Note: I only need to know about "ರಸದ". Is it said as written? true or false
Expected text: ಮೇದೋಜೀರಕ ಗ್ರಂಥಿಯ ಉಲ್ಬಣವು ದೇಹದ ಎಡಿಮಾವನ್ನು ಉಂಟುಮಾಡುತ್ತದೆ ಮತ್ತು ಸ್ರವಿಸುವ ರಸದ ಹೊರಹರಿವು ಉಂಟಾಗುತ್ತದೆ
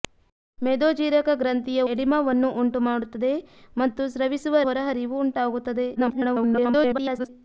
false